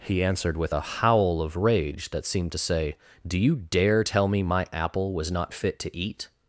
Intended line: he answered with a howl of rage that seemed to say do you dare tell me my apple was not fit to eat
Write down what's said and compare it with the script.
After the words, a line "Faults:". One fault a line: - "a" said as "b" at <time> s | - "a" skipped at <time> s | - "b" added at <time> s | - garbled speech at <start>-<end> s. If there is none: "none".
he answered with a howl of rage that seemed to say do you dare tell me my apple was not fit to eat
Faults:
none